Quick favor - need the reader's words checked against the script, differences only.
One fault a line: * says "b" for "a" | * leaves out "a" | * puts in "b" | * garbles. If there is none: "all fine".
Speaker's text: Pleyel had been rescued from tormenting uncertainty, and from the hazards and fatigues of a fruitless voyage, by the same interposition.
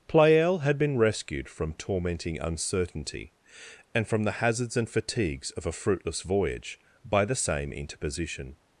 all fine